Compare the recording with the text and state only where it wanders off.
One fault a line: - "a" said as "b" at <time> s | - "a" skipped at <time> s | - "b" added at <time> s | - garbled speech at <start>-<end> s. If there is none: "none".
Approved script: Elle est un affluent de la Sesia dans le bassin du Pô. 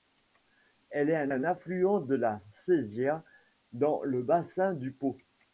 - "un" added at 1.3 s